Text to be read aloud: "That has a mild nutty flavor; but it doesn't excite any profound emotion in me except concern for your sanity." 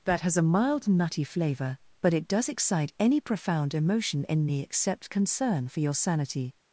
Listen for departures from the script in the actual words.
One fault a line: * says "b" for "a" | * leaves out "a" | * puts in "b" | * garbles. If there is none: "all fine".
* says "does" for "doesn't"